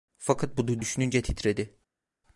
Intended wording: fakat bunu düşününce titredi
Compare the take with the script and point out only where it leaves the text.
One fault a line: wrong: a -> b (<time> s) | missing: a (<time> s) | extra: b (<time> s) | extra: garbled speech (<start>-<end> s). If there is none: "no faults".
no faults